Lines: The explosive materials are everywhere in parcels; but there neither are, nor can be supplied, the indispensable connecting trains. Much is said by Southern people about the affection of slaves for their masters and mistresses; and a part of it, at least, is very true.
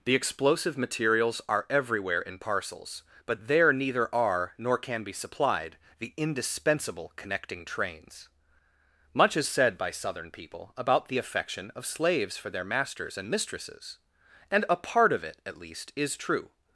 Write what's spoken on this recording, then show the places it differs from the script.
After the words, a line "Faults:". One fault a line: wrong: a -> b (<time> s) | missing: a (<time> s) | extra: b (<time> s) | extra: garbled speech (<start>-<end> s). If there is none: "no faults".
The explosive materials are everywhere in parcels; but there neither are, nor can be supplied, the indispensable connecting trains. Much is said by Southern people about the affection of slaves for their masters and mistresses; and a part of it, at least, is true.
Faults:
missing: very (16.2 s)